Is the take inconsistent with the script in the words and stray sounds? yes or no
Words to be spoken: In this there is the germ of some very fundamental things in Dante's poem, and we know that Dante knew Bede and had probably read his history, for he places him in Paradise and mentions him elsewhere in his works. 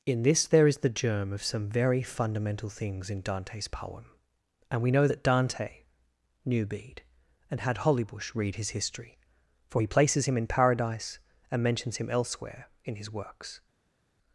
yes